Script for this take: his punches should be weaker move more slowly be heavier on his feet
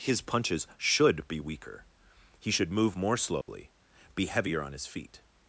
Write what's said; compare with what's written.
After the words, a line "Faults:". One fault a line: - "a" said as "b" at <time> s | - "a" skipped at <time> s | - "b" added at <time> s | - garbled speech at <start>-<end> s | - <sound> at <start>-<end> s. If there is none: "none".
his punches should be weaker he should move more slowly be heavier on his feet
Faults:
- "he should" added at 2.4 s
- dropout at 3.4-3.5 s